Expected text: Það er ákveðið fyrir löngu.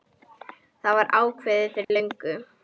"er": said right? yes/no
no